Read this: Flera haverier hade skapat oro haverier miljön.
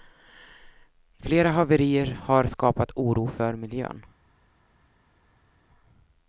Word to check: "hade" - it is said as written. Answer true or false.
false